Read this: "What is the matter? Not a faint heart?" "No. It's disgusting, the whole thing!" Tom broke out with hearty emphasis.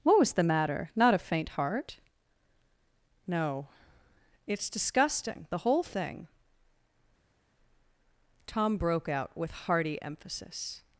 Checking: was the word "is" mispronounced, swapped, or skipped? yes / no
yes